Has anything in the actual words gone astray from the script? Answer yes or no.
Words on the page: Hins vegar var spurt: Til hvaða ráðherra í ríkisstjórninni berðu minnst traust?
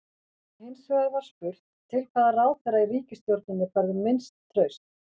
no